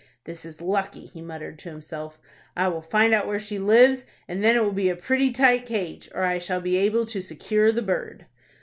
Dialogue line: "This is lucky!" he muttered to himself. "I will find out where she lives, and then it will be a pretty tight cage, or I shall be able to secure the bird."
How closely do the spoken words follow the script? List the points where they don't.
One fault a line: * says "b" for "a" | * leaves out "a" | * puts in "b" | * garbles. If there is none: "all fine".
all fine